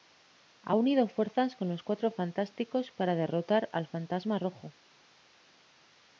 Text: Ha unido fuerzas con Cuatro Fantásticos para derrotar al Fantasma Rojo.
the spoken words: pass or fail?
fail